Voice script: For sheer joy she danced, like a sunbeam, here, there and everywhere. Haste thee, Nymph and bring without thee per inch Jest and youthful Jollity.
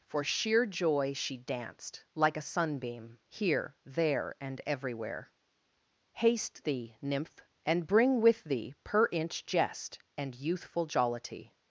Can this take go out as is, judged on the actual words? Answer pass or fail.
fail